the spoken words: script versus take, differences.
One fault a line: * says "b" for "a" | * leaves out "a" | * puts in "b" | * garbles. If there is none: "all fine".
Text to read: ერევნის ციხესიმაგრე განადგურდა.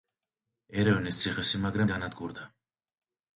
all fine